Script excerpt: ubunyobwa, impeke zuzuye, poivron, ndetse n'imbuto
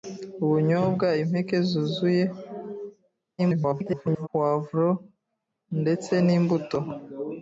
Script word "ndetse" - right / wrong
right